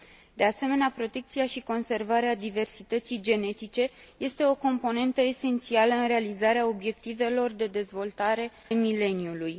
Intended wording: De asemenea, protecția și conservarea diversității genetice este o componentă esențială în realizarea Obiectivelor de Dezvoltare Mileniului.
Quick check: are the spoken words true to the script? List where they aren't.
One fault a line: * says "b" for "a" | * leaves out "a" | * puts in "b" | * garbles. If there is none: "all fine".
all fine